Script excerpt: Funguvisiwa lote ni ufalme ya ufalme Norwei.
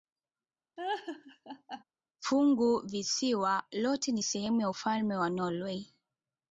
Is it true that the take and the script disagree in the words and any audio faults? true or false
true